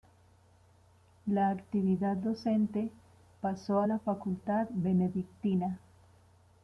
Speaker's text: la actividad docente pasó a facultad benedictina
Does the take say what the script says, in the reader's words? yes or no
no